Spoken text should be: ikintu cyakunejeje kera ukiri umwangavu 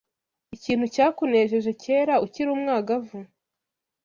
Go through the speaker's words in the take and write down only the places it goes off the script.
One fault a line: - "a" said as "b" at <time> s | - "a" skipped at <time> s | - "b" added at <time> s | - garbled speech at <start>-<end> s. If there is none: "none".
none